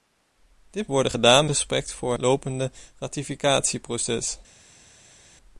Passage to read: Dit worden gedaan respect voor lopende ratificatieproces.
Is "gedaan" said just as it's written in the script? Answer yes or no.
yes